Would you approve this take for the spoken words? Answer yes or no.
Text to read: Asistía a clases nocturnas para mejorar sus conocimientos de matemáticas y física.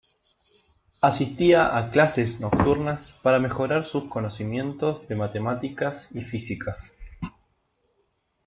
yes